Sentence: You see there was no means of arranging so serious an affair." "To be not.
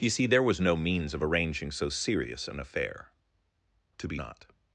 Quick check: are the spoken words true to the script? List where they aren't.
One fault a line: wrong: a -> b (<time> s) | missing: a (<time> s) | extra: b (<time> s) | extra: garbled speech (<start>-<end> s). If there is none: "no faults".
no faults